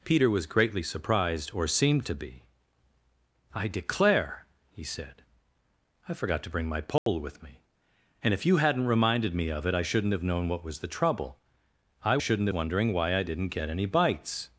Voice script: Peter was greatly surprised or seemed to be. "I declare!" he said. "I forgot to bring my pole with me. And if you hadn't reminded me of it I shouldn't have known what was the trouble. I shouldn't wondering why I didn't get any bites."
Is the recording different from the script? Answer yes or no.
no